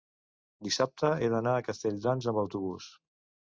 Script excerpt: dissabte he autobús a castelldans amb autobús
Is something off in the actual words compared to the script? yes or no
yes